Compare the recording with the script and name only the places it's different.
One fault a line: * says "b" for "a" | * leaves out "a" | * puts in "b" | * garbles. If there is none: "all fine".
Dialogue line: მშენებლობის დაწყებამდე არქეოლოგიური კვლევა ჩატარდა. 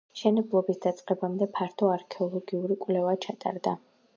* puts in "ფართო"